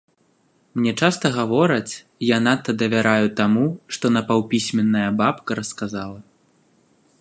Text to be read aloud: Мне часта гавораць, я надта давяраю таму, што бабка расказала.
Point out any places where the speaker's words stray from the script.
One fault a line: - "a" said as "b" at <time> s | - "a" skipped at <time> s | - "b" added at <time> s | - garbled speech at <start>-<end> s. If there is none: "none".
- "напаўпісьменная" added at 4.2 s